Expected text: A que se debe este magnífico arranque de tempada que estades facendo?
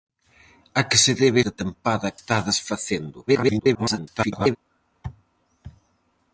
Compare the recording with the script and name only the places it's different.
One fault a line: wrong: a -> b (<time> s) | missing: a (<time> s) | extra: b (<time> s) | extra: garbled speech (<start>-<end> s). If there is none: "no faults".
missing: este magnífico arranque (1.4 s)
missing: que (2.1 s)
extra: garbled speech (3.3-4.6 s)